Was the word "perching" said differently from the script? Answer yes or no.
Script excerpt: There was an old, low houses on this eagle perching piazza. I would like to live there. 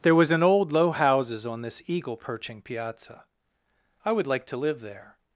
no